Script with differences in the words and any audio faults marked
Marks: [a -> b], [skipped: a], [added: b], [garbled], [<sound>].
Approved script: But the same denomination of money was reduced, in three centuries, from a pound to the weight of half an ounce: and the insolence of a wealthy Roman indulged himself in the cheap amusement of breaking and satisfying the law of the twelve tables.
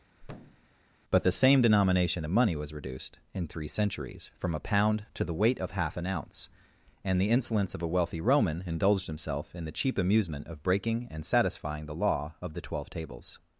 [thud] But the same denomination of money was reduced, in three centuries, from a pound to the weight of half an ounce: and the insolence of a wealthy Roman indulged himself in the cheap amusement of breaking and satisfying the law of the twelve tables.